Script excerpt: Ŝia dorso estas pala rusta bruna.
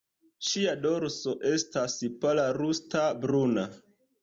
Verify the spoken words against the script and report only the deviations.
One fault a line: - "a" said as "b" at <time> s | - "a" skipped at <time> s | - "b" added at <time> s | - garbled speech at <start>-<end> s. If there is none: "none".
none